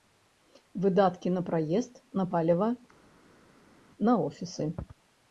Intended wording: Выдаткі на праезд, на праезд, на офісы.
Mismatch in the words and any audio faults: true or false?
true